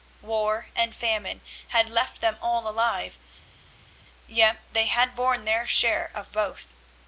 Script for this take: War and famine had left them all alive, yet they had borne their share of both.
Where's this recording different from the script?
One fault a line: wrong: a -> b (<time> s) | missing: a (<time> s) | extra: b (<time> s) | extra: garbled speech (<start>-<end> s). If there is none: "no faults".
no faults